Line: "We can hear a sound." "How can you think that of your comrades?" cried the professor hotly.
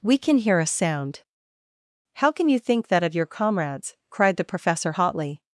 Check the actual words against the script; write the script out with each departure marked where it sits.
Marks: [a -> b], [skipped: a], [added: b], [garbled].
"We can hear a sound." "How can you think that of your comrades?" cried the professor hotly.